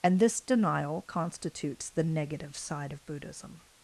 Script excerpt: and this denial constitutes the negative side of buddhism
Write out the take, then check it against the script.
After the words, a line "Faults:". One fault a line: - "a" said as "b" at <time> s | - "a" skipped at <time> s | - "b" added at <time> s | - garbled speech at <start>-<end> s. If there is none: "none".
and this denial constitutes the negative side of buddhism
Faults:
none